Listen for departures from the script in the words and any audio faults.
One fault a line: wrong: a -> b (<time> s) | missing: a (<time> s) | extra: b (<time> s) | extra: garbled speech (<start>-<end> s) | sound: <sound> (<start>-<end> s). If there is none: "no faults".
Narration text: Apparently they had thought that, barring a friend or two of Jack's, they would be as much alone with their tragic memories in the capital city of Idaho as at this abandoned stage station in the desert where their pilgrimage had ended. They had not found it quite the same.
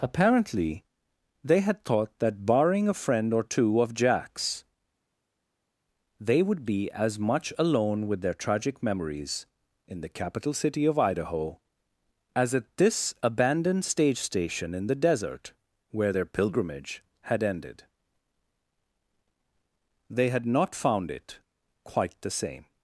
no faults